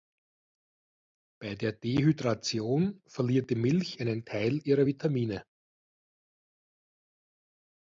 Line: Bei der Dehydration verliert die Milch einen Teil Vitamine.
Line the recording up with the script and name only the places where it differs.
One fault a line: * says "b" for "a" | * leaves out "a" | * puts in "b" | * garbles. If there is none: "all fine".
* puts in "ihrer"